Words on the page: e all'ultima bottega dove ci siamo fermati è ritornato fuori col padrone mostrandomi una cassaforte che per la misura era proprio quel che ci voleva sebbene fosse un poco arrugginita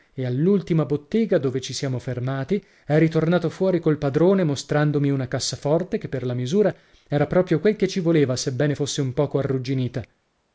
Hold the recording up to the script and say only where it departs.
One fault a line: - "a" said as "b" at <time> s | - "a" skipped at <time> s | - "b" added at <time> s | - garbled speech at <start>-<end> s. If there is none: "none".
none